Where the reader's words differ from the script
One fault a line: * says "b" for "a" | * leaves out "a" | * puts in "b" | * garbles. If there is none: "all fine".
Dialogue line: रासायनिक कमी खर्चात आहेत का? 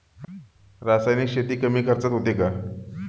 * puts in "शेती"
* says "होते" for "आहेत"